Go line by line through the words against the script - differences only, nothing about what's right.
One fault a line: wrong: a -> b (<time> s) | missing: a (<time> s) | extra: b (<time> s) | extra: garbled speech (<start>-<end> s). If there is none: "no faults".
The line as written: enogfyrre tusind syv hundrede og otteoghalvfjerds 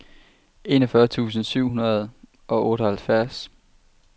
no faults